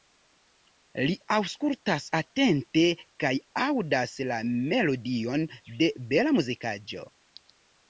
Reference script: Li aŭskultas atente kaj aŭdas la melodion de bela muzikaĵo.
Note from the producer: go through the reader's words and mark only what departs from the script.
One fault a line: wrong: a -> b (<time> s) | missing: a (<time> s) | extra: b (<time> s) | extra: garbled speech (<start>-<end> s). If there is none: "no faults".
no faults